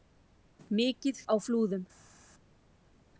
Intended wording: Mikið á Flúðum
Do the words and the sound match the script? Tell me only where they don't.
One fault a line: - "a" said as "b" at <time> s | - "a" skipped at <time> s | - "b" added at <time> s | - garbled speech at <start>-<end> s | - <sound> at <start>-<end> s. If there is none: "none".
none